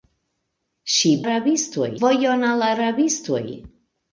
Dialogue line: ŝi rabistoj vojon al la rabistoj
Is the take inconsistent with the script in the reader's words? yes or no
no